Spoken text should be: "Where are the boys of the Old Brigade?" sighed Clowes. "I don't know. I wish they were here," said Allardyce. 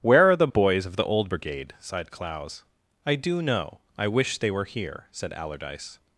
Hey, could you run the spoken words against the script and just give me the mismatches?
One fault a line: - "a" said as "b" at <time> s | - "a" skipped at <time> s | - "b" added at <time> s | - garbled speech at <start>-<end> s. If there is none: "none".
- "don't" said as "do" at 3.2 s